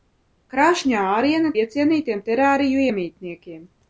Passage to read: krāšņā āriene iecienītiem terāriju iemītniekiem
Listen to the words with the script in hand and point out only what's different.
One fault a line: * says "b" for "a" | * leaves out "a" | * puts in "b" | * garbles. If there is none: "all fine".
all fine